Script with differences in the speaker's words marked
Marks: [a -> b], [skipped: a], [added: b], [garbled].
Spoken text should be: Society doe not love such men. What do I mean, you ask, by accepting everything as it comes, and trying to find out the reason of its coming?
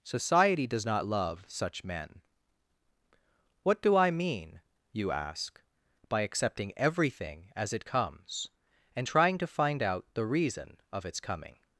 Society [doe -> does] not love such men. What do I mean, you ask, by accepting everything as it comes, and trying to find out the reason of its coming?